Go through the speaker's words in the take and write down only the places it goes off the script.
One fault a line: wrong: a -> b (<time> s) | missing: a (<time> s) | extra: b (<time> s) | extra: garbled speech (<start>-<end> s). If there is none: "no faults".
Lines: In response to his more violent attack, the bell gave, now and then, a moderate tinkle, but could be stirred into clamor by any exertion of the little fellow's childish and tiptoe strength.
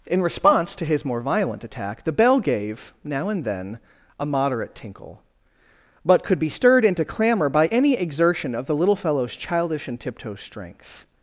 no faults